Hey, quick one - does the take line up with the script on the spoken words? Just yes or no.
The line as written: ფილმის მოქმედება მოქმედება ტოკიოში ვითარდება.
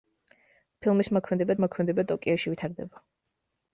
yes